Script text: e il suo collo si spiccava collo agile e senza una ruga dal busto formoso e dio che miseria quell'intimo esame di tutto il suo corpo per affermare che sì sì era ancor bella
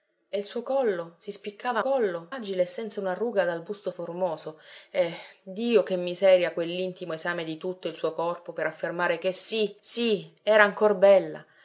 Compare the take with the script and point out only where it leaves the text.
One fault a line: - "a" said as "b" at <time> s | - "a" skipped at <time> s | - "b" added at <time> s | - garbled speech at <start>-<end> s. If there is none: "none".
none